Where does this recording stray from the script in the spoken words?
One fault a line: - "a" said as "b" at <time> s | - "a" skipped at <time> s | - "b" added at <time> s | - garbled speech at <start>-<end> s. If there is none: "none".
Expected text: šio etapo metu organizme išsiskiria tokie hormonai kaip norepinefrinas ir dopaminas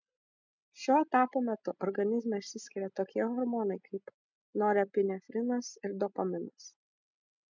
none